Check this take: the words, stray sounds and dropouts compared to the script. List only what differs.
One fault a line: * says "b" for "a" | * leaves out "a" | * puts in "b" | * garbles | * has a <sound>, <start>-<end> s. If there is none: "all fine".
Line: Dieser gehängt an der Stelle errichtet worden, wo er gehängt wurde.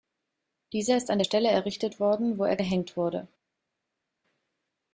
* says "ist" for "gehängt"